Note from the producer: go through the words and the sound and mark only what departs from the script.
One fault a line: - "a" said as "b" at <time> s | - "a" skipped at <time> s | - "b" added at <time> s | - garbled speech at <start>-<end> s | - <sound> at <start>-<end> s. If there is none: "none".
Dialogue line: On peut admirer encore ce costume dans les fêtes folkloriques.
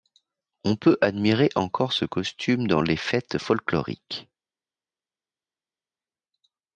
none